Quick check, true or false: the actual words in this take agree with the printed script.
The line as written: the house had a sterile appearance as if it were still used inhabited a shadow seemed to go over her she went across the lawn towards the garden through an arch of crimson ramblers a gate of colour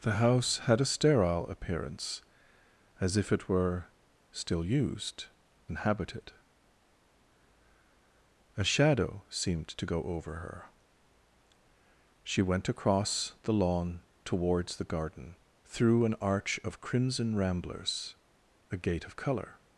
true